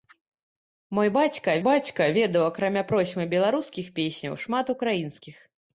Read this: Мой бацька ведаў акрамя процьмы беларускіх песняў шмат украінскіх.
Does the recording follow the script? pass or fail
fail